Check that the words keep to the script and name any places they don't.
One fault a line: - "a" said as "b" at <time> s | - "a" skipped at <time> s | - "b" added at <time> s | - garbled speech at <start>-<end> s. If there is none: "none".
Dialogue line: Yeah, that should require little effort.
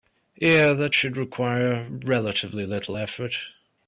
- "relatively" added at 1.9 s